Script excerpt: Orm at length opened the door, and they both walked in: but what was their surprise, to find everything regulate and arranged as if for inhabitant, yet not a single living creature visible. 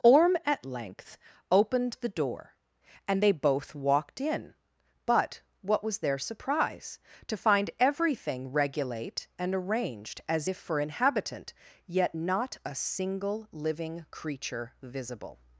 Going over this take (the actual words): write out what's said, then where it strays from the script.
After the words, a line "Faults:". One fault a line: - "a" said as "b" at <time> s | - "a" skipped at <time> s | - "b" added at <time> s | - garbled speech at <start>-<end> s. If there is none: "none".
Orm at length opened the door, and they both walked in: but what was their surprise, to find everything regulate and arranged as if for inhabitant, yet not a single living creature visible.
Faults:
none